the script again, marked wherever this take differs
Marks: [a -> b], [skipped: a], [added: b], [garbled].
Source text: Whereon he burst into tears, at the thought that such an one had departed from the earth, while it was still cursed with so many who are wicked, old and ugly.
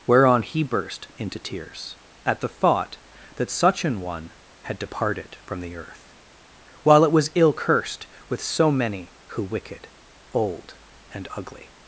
Whereon he burst into tears, at the thought that such an one had departed from the earth, while it was [still -> ill] cursed with so many who [skipped: are] wicked, old and ugly.